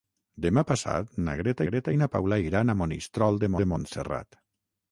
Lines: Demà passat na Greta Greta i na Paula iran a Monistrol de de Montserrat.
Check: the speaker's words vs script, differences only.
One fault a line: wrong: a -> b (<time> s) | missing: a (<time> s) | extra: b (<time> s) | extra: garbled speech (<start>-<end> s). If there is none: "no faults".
no faults